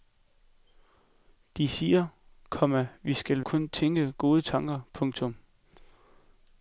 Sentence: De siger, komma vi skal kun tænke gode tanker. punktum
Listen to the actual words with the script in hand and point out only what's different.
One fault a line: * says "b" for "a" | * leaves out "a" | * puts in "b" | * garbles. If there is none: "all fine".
all fine